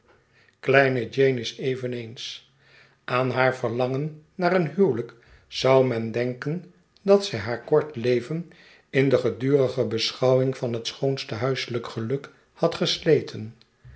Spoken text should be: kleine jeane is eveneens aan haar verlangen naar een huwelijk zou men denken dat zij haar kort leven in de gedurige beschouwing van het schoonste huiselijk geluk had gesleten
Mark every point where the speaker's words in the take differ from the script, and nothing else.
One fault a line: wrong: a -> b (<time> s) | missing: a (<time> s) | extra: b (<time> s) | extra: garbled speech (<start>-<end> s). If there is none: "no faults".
no faults